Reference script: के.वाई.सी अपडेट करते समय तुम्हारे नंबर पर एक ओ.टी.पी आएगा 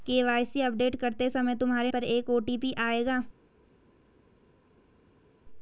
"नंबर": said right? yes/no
no